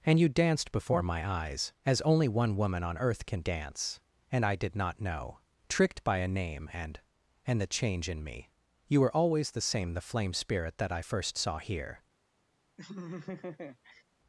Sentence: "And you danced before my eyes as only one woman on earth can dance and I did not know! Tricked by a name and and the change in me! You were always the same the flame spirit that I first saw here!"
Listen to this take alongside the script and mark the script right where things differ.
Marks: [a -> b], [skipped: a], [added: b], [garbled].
"And you danced before my eyes as only one woman on earth can dance and I did not know! Tricked by a name and and the change in me! You were always the same the flame spirit that I first saw here!"